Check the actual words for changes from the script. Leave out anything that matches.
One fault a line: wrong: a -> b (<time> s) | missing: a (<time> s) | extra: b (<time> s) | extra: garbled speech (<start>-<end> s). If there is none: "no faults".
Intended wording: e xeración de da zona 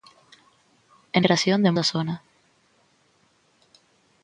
no faults